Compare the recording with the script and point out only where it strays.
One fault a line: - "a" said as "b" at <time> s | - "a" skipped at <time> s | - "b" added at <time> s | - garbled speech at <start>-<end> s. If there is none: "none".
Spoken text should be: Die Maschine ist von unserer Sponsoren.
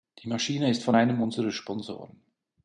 - "einem" added at 0.9 s